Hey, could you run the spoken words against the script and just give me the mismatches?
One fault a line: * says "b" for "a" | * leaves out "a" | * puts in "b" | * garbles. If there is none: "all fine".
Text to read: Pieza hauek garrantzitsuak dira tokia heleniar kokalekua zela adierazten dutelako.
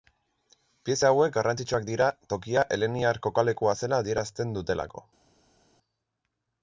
all fine